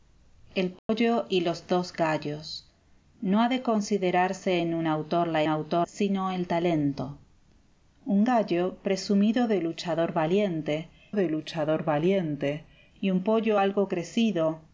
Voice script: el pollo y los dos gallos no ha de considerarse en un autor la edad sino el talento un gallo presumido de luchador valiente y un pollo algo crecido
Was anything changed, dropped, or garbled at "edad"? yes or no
yes